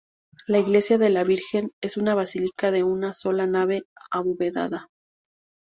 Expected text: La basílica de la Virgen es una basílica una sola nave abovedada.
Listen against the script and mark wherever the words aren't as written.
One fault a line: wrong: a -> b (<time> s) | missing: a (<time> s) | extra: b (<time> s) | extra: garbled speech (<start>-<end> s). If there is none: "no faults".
wrong: basílica -> iglesia (0.6 s)
extra: de (2.7 s)